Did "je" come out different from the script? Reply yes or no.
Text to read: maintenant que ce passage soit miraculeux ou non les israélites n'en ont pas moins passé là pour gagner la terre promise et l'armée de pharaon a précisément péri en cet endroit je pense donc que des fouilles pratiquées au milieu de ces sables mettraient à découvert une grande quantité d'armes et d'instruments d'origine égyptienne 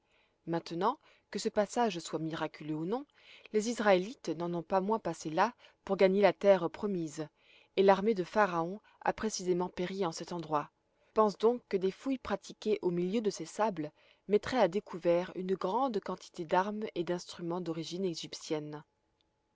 yes